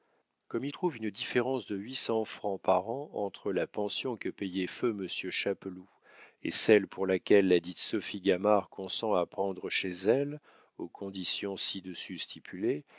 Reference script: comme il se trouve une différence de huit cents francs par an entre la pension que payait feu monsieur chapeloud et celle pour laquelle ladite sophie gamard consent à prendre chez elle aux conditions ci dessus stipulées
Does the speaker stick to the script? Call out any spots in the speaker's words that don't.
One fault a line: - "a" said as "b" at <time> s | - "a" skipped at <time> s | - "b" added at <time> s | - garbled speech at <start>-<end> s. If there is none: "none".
- "se" skipped at 0.7 s